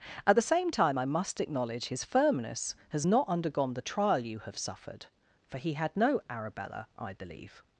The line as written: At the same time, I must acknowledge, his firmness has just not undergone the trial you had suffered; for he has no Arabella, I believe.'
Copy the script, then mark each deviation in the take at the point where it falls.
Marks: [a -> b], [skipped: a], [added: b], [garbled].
At the same time, I must acknowledge, his firmness has [skipped: just] not undergone the trial you [had -> have] suffered; for he [has -> had] no Arabella, I believe.'